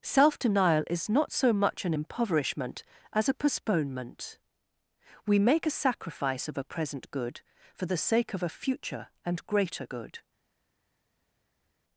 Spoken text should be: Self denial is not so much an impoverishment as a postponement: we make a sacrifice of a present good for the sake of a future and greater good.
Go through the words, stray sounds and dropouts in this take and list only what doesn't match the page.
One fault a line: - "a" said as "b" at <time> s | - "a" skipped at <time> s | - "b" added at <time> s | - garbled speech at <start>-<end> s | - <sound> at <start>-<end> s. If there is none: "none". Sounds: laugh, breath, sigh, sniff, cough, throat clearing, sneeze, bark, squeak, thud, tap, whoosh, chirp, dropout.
none